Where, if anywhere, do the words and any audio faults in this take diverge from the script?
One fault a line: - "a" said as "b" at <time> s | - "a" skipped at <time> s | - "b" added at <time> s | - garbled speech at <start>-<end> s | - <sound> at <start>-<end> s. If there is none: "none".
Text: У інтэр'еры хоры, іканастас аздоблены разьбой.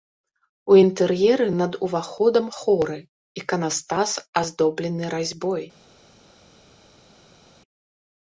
- "над уваходам" added at 1.6 s